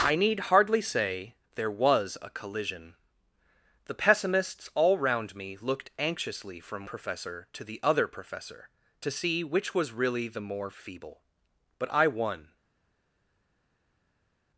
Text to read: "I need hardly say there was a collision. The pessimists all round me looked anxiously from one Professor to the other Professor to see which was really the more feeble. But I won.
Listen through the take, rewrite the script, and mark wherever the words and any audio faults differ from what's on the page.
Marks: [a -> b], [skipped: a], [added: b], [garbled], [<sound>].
"I need hardly say there was a collision. The pessimists all round me looked anxiously from [skipped: one] Professor to the other Professor to see which was really the more feeble. But I won.